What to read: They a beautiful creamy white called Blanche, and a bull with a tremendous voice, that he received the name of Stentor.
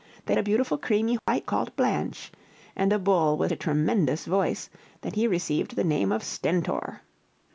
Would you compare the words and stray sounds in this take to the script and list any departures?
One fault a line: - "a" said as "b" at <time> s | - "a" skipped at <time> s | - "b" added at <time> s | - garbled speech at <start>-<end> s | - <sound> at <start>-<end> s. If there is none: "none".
- dropout at 1.2-1.3 s